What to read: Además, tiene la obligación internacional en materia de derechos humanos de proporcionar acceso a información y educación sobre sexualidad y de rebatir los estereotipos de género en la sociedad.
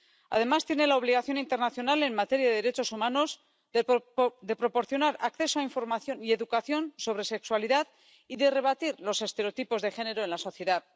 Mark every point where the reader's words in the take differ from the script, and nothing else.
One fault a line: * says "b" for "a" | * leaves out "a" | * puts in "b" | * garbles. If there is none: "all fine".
all fine